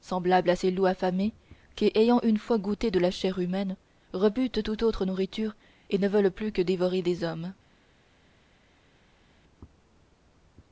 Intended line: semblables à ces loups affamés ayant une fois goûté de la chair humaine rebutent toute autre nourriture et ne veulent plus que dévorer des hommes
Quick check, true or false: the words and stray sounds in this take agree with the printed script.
false